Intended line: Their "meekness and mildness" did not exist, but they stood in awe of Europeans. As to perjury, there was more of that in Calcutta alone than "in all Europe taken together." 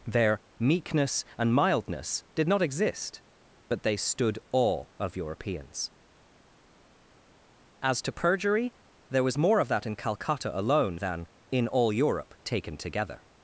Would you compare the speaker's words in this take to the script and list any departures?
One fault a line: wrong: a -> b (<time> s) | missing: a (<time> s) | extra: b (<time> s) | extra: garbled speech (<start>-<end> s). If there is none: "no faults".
missing: in (4.4 s)